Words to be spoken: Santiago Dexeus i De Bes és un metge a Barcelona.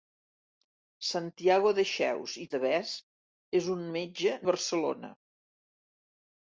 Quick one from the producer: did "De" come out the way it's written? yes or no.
yes